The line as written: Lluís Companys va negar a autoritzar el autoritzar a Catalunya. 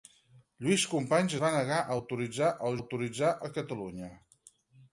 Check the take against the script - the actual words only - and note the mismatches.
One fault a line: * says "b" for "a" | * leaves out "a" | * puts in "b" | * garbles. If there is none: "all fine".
all fine